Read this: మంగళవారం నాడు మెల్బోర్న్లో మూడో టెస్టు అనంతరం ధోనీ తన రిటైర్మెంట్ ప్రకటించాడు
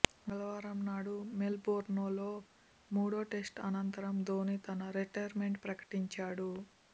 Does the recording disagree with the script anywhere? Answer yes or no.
no